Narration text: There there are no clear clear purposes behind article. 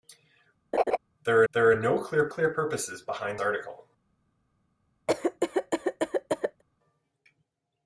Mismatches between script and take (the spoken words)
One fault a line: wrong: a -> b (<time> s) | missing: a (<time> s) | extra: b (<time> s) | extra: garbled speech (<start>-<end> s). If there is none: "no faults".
no faults